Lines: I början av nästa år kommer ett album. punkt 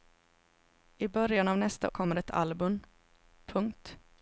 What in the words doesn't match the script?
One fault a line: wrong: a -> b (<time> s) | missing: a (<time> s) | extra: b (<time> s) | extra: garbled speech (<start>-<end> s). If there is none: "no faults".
missing: år (1.9 s)